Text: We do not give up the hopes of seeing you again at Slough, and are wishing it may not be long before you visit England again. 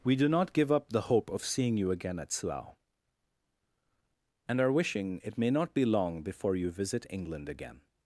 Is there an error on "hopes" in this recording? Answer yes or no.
yes